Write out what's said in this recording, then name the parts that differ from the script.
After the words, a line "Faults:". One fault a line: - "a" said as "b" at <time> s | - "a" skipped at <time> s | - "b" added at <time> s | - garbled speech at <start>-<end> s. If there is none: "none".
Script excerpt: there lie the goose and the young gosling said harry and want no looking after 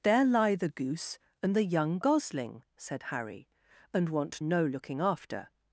there lie the goose and the young gosling said harry and want no looking after
Faults:
none